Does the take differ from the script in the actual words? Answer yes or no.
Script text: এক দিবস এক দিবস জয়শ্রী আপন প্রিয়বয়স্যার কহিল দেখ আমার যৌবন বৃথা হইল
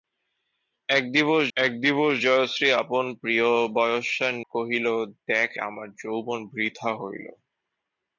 no